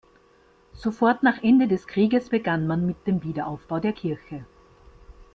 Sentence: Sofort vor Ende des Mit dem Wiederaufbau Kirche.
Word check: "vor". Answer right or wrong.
wrong